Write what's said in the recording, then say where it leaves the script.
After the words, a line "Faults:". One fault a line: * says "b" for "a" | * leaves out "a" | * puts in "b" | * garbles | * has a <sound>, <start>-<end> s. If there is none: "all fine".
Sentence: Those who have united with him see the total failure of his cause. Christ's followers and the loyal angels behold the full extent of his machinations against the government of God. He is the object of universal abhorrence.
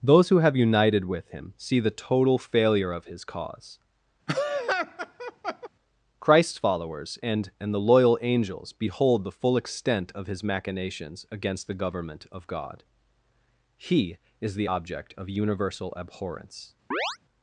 Those who have united with him see the total failure of his cause. Christ's followers and and the loyal angels behold the full extent of his machinations against the government of God. He is the object of universal abhorrence.
Faults:
* has a laugh, 4.3-5.7 s
* puts in "and"
* has a chirp, 16.9-17.2 s